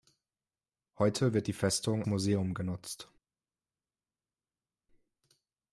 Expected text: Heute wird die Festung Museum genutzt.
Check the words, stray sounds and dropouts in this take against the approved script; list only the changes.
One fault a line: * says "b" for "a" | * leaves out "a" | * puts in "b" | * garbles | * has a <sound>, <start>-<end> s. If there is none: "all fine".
all fine